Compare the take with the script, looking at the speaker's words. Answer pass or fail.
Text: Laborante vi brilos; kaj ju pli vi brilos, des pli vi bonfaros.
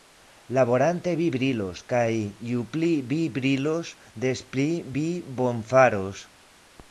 pass